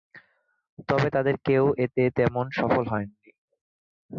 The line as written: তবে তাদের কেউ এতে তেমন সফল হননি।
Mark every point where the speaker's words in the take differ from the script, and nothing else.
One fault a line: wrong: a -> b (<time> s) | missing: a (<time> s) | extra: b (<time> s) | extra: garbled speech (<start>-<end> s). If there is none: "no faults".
no faults